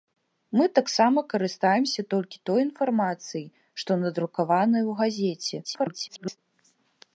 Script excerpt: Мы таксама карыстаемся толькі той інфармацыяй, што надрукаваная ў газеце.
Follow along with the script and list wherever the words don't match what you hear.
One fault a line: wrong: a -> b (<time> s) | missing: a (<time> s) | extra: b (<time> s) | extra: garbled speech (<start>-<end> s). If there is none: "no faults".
extra: garbled speech (5.6-6.4 s)